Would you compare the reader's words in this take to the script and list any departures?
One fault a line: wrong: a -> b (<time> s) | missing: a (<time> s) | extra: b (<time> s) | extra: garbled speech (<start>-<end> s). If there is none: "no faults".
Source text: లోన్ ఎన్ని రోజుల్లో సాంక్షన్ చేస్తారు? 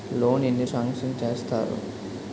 missing: రోజుల్లో (0.7 s)